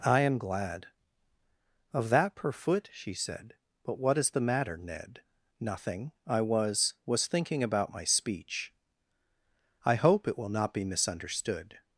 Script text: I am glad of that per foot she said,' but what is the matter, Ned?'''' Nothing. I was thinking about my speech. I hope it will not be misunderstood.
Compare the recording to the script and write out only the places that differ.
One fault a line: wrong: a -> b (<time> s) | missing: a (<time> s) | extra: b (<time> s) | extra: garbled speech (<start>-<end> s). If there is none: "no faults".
extra: was (7.0 s)